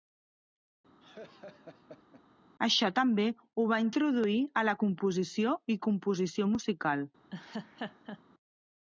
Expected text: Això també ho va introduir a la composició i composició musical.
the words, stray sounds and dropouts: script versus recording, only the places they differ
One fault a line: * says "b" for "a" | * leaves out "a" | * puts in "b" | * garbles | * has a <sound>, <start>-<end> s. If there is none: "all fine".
* has a laugh, 1.0-2.2 s
* has a laugh, 7.3-8.2 s